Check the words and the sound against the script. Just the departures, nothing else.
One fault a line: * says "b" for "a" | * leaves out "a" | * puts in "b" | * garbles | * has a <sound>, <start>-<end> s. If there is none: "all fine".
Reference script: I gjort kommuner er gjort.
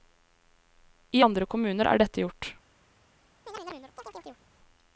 * says "andre" for "gjort"
* puts in "dette"
* has a chirp, 3.5-4.5 s